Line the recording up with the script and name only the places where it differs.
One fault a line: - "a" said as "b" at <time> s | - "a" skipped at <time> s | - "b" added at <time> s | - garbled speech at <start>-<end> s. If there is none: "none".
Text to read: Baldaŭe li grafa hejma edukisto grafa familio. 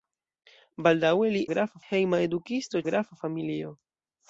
none